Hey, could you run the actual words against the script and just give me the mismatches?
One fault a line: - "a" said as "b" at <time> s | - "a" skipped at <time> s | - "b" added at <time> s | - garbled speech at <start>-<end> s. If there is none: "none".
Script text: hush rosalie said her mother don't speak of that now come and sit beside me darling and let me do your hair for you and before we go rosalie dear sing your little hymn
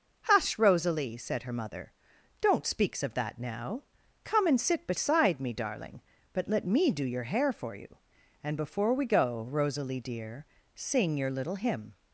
- "speak" said as "speaks" at 2.6 s
- "and" said as "but" at 6.3 s